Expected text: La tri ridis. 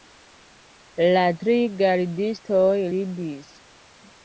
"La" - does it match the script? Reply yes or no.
yes